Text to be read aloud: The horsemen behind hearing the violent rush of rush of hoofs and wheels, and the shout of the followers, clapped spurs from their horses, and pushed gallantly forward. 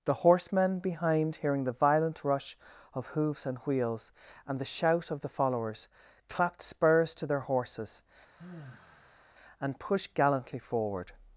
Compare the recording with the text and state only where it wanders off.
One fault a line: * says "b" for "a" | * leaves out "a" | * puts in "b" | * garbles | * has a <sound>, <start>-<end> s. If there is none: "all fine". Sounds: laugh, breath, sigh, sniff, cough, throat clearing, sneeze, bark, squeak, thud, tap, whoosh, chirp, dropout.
* leaves out "rush of"
* says "to" for "from"
* has a sigh, 8.4-9.3 s